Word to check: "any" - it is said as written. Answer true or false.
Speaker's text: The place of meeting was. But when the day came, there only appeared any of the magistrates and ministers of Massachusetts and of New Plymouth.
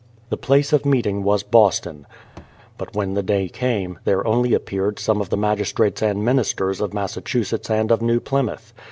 false